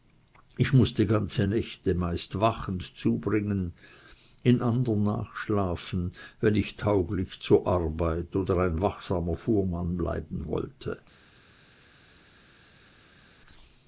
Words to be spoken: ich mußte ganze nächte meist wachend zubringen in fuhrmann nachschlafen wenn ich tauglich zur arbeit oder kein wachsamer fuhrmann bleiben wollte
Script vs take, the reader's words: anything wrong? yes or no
yes